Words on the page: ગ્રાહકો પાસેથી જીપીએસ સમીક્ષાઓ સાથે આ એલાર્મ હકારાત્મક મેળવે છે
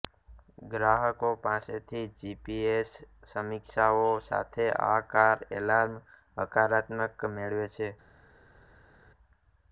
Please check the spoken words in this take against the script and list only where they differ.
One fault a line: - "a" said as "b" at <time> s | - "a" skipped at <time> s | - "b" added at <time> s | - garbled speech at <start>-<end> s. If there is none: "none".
- "કાર" added at 5.1 s